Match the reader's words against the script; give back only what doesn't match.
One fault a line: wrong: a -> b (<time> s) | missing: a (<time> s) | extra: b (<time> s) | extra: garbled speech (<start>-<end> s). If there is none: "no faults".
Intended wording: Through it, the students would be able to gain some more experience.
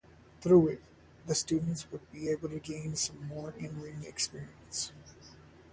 extra: in ring (3.5 s)